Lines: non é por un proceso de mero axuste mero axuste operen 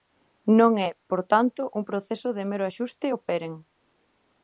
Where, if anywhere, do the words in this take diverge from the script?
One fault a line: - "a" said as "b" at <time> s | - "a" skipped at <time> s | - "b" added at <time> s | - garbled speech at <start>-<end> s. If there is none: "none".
- "tanto" added at 1.3 s
- "mero axuste" skipped at 3.1 s